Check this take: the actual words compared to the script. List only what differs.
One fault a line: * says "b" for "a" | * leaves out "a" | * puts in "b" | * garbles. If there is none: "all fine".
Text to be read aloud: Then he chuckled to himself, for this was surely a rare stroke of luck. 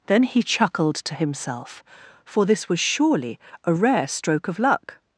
all fine